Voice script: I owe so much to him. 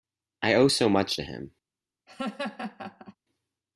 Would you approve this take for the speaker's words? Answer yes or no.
yes